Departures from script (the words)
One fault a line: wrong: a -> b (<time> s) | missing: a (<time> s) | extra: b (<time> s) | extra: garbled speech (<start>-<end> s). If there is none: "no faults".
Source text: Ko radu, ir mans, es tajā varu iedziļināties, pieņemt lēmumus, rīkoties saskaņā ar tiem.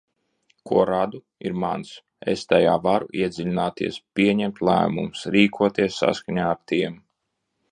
no faults